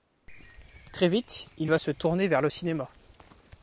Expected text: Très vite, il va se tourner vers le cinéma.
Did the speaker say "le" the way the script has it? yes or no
yes